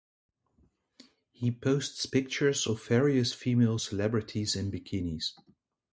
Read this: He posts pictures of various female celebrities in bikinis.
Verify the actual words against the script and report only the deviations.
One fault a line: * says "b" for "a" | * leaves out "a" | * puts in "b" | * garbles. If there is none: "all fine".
all fine